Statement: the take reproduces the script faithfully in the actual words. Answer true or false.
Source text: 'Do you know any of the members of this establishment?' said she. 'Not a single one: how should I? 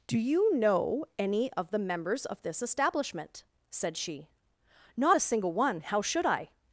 true